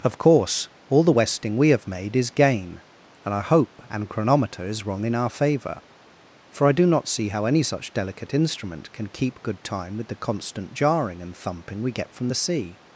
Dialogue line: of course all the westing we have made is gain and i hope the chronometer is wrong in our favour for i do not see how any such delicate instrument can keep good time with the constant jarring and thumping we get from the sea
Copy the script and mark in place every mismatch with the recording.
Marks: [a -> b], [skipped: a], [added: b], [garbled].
of course all the westing we have made is gain and i hope [the -> an] chronometer is wrong in our favour for i do not see how any such delicate instrument can keep good time with the constant jarring and thumping we get from the sea